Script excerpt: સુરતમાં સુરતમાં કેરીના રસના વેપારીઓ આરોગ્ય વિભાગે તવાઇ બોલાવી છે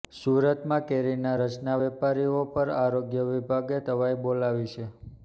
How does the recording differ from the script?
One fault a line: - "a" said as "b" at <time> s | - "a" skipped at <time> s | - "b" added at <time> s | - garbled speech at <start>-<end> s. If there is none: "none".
- "સુરતમાં" skipped at 0.8 s
- "પર" added at 2.5 s